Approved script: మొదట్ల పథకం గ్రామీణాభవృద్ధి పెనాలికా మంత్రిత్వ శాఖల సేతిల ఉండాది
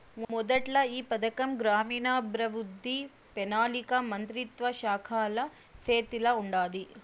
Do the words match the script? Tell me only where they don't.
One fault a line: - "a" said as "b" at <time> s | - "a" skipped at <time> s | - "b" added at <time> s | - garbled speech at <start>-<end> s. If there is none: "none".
- "ఈ" added at 0.9 s